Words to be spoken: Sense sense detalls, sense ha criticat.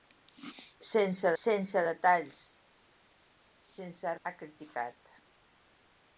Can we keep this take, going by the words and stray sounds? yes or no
yes